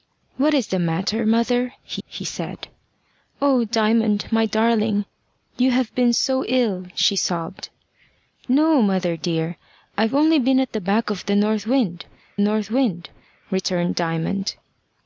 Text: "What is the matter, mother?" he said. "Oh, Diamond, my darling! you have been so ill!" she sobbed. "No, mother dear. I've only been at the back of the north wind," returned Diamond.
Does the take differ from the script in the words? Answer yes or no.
yes